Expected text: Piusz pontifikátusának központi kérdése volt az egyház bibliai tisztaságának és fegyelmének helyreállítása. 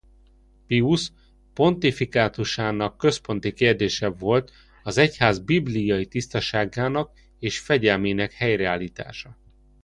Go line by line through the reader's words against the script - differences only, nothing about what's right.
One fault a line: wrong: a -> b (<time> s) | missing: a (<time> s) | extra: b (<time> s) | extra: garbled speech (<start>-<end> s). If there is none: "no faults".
no faults